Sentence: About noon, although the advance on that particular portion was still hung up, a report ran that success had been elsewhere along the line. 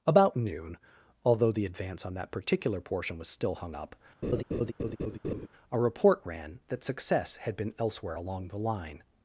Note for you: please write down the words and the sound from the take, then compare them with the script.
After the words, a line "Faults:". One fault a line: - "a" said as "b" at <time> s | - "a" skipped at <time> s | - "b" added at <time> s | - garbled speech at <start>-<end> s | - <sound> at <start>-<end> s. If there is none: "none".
About noon, although the advance on that particular portion was still hung up, a report ran that success had been elsewhere along the line.
Faults:
- laugh at 4.2-5.5 s